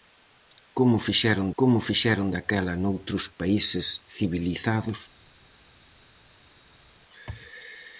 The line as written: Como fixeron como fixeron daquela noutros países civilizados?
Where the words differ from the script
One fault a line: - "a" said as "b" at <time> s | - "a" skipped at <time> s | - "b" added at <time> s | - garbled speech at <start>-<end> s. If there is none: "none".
none